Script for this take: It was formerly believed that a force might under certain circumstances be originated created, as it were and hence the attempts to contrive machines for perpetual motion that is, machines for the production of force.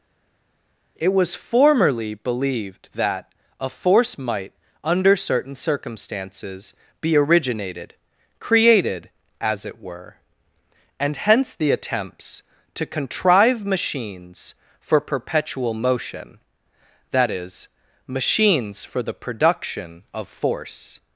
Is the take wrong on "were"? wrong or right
right